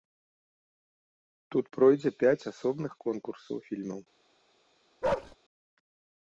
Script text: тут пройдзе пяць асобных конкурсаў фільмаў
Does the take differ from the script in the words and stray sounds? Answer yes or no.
yes